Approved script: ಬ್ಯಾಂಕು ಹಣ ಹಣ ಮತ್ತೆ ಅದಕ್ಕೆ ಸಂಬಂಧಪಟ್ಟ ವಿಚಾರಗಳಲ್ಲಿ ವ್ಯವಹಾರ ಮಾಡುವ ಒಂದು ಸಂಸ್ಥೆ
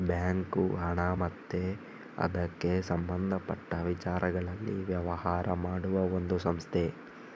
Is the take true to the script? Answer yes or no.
no